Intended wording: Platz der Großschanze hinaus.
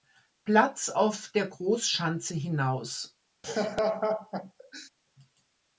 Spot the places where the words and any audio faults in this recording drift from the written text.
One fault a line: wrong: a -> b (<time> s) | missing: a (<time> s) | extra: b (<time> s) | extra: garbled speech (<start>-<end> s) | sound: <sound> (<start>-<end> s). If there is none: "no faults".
extra: auf (0.9 s)
sound: laugh (3.4-4.9 s)